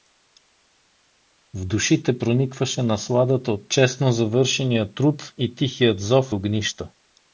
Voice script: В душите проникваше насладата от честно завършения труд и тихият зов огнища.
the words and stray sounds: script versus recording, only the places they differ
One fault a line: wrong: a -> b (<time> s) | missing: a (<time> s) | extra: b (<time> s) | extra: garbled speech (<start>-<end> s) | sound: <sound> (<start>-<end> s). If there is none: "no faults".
no faults